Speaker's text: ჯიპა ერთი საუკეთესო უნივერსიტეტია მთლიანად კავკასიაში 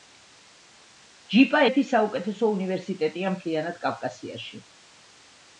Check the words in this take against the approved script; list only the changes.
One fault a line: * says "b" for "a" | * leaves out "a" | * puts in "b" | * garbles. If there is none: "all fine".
all fine